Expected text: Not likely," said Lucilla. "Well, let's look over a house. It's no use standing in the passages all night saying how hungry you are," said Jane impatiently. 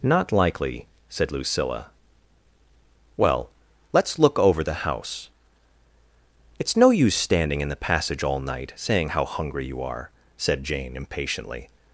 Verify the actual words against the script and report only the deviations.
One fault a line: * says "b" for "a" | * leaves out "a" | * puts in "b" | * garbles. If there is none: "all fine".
* says "the" for "a"
* says "passage" for "passages"